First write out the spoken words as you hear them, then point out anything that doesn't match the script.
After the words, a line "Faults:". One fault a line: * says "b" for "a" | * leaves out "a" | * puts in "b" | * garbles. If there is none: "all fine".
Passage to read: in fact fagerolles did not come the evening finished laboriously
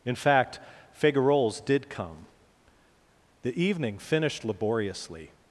in fact fagerolles did come the evening finished laboriously
Faults:
* leaves out "not"